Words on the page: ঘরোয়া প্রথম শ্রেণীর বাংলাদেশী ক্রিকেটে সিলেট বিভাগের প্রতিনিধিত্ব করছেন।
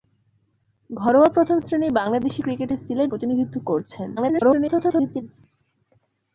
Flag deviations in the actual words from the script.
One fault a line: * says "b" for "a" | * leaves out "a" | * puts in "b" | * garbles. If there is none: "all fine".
* leaves out "বিভাগের"
* garbles